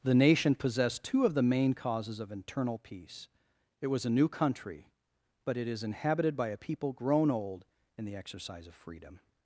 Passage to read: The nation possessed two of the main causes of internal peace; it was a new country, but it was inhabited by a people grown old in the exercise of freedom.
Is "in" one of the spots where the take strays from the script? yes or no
no